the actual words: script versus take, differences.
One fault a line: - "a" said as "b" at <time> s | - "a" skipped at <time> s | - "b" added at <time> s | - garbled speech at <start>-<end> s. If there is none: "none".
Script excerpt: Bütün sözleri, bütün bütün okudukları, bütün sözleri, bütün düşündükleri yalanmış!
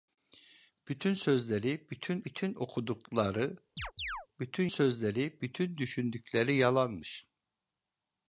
none